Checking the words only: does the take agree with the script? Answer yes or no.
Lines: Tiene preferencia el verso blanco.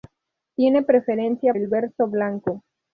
yes